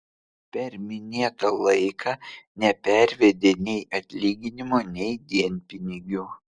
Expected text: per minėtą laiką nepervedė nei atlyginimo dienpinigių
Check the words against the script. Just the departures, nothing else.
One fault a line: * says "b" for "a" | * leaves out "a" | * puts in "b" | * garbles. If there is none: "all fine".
* puts in "nei"